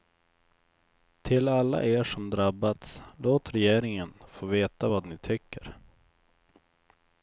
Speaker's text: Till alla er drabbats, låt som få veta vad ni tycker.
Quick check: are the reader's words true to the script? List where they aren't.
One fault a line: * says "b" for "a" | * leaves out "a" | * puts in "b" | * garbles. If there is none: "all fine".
* puts in "som"
* says "regeringen" for "som"